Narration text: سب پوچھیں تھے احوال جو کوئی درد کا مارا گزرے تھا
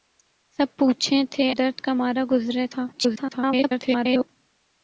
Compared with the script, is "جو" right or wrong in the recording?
wrong